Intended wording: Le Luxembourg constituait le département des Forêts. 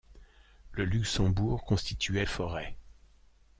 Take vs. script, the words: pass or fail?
fail